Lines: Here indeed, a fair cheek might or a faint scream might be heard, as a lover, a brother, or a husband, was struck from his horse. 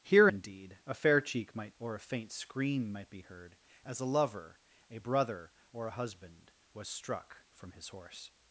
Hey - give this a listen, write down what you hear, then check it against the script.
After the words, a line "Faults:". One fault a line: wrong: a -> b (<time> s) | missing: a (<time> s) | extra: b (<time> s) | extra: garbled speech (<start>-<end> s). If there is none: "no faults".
Here indeed, a fair cheek might or a faint scream might be heard, as a lover, a brother, or a husband, was struck from his horse.
Faults:
no faults